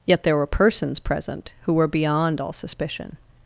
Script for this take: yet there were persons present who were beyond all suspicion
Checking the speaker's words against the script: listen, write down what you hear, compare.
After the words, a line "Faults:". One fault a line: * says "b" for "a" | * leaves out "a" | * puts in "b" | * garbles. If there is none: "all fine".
yet there were persons present who were beyond all suspicion
Faults:
all fine